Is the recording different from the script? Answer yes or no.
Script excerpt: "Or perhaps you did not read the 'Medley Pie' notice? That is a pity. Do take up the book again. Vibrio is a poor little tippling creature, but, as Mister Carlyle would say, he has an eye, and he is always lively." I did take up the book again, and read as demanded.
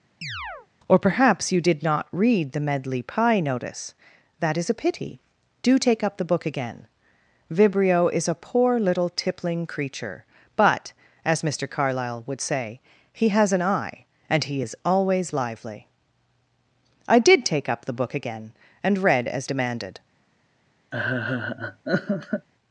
no